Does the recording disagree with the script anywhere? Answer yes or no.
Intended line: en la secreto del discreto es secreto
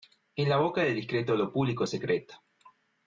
yes